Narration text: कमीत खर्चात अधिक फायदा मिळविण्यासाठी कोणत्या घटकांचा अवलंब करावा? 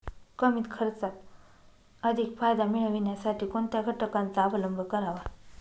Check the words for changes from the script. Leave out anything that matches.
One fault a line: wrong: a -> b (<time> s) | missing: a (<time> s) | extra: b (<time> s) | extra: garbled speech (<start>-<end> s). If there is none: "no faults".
no faults